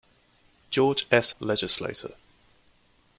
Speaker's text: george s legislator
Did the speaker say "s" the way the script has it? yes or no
yes